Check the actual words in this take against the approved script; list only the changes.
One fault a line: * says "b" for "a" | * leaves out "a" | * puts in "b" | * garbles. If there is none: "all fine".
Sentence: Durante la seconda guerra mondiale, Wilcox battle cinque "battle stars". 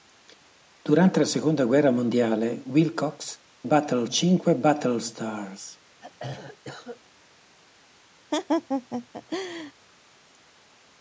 all fine